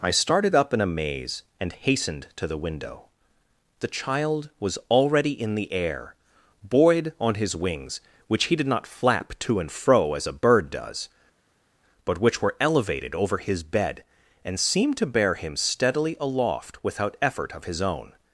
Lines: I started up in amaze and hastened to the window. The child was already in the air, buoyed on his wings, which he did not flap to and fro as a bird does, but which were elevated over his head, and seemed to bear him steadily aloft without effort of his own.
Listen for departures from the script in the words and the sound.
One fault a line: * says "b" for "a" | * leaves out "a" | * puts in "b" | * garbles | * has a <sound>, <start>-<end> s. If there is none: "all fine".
* says "bed" for "head"